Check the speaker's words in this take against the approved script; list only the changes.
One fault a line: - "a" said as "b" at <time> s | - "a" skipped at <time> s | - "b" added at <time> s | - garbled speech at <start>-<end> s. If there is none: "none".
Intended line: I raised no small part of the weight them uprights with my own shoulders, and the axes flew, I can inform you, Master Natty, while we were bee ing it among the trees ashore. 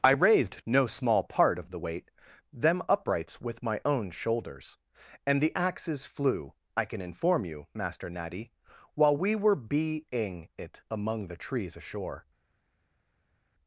none